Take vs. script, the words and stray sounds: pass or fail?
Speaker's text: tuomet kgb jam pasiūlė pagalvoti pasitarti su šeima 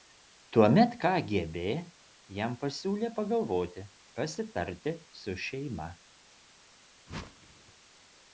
fail